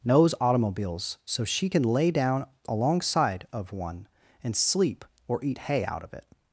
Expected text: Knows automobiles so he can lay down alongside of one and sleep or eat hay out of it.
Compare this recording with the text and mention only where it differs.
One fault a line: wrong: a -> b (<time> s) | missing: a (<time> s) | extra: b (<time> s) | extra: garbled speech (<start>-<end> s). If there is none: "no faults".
wrong: he -> she (1.4 s)